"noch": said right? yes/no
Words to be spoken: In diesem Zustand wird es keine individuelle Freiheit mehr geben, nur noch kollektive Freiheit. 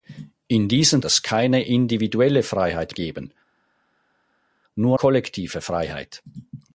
no